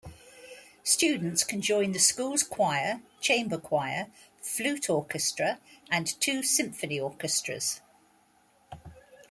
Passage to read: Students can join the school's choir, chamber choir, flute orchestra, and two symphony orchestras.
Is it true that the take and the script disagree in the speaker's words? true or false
false